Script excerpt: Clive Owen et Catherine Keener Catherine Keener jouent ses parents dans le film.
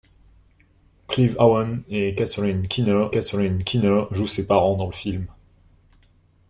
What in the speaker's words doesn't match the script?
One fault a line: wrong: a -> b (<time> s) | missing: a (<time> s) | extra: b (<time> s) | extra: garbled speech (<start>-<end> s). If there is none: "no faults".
no faults